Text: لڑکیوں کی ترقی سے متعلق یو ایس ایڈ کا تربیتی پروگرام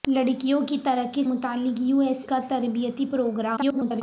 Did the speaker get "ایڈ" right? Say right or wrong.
wrong